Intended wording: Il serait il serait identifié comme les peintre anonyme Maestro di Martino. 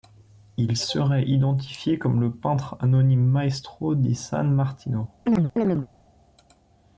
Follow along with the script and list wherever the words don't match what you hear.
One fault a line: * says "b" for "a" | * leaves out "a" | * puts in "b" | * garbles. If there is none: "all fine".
* leaves out "il serait"
* says "le" for "les"
* puts in "San"